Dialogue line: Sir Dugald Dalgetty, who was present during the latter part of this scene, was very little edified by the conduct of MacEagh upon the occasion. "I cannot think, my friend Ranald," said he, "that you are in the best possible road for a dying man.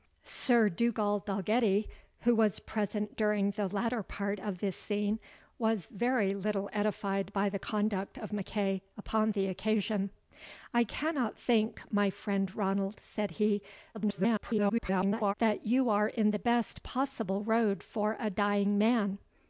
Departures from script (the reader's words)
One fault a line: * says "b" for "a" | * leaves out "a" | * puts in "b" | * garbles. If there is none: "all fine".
* garbles